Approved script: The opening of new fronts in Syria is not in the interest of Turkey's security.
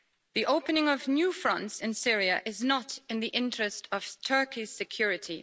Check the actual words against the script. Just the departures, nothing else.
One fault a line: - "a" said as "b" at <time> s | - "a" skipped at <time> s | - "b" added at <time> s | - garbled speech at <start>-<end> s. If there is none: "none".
none